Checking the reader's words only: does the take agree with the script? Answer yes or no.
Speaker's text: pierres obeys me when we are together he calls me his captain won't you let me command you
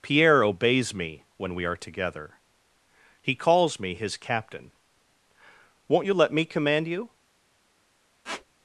no